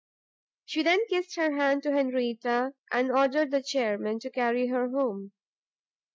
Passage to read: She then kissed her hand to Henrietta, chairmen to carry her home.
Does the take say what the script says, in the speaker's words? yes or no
no